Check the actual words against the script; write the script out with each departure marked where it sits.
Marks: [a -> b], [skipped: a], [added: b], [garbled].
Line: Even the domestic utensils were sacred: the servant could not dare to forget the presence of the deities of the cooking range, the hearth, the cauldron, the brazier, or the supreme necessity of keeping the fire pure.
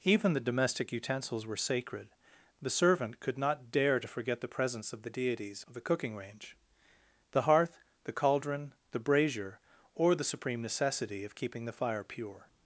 Even the domestic utensils were sacred: the servant could not dare to forget the presence of the deities of the cooking range, the hearth, the cauldron, the brazier, or the supreme necessity of keeping the fire pure.